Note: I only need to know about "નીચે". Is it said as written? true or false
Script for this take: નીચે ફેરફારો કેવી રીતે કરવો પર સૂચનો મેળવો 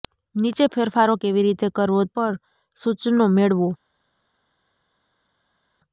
true